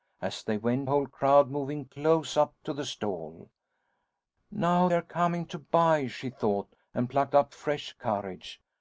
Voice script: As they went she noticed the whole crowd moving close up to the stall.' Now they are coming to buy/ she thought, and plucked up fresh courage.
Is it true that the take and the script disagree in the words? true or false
true